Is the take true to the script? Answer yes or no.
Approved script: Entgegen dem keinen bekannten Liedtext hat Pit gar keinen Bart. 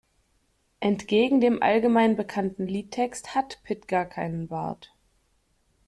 no